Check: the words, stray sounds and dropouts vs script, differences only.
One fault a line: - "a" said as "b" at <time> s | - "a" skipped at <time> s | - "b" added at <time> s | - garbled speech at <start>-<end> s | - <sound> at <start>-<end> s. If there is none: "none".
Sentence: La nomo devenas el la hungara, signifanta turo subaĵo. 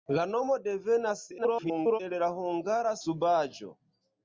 - garbled speech at 1.4-2.0 s
- "signifanta turo" skipped at 2.9 s